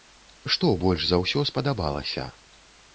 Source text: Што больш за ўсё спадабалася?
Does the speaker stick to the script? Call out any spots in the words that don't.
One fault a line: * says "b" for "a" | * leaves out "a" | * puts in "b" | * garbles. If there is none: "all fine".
all fine